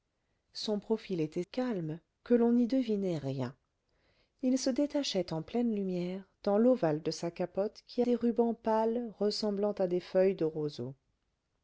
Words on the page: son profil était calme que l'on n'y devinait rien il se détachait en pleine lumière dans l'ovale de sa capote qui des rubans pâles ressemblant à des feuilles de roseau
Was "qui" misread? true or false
false